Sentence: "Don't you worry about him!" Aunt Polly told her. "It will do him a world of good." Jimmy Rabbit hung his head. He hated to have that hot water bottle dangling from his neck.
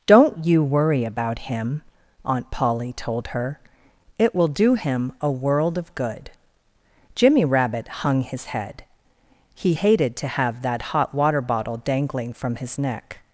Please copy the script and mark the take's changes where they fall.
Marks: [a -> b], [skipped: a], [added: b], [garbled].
"Don't you worry about him!" Aunt Polly told her. "It will do him a world of good." Jimmy Rabbit hung his head. He hated to have that hot water bottle dangling from his neck.